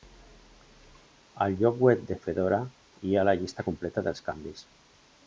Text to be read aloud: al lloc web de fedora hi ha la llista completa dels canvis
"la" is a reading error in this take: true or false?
false